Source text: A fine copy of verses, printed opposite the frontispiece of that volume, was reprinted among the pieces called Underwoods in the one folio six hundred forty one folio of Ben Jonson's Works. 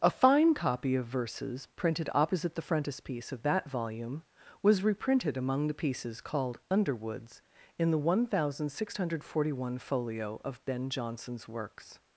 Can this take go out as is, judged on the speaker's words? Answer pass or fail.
fail